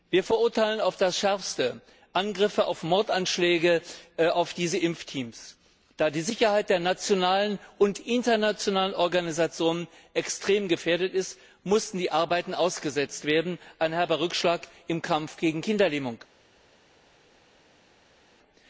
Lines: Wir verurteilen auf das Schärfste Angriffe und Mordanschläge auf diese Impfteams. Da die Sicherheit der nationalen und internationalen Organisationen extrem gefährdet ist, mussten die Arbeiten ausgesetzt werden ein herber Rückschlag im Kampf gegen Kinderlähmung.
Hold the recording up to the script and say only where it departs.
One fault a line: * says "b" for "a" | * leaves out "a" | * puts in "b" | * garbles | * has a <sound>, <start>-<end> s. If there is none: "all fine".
all fine